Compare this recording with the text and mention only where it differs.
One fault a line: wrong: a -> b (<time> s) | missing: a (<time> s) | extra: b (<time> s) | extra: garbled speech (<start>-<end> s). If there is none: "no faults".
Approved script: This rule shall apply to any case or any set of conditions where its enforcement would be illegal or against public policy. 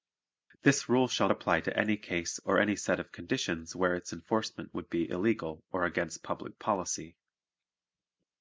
no faults